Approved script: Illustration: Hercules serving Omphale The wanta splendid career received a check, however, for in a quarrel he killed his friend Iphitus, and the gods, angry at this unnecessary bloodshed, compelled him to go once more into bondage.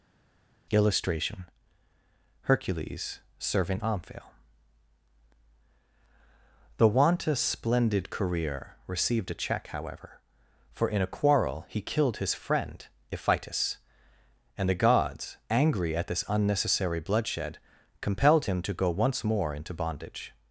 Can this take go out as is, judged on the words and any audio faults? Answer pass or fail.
pass